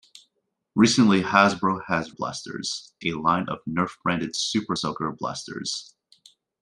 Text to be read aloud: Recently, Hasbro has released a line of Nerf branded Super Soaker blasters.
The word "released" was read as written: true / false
false